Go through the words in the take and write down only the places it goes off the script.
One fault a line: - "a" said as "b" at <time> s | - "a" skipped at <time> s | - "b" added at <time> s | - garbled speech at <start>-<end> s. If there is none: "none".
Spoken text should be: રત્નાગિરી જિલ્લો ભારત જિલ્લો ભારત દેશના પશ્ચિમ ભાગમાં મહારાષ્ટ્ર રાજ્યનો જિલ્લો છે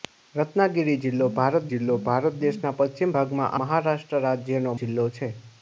none